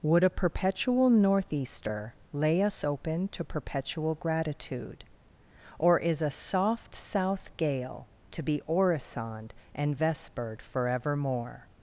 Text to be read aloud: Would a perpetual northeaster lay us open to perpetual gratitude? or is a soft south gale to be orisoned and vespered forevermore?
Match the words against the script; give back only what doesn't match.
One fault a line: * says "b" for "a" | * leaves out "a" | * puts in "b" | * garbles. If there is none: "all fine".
all fine